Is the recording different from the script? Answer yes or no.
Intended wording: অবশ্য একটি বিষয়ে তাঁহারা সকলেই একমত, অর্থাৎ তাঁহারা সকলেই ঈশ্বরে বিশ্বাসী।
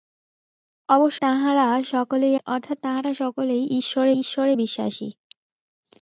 yes